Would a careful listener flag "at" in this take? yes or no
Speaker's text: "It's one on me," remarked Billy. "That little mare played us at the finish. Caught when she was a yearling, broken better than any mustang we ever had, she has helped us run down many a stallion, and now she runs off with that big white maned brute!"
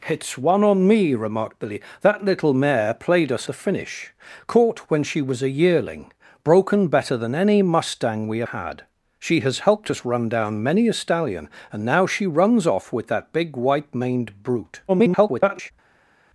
yes